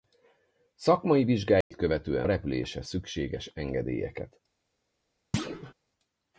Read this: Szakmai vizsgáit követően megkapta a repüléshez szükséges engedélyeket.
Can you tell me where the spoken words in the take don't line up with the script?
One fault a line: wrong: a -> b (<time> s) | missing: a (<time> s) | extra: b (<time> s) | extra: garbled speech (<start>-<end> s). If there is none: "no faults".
missing: megkapta (2.3 s)